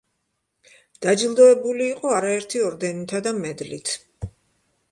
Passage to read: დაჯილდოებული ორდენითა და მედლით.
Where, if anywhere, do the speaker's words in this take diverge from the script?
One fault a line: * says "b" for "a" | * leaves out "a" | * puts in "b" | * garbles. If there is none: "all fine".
* puts in "იყო არაერთი"